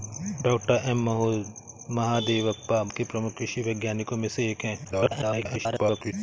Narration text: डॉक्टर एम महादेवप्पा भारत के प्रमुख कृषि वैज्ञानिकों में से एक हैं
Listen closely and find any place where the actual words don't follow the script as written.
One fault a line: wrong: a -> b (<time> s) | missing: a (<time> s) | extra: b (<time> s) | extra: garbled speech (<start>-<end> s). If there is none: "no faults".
missing: भारत (2.8 s)
extra: garbled speech (4.8-6.1 s)